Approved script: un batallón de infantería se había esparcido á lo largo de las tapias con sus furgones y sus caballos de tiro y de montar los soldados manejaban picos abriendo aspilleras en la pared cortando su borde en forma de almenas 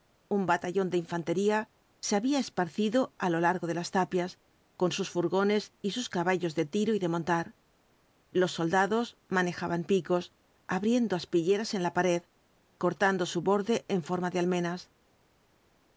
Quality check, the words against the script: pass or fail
pass